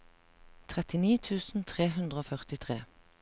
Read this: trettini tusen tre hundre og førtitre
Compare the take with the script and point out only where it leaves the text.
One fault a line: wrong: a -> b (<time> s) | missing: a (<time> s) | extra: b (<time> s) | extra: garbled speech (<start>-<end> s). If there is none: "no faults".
no faults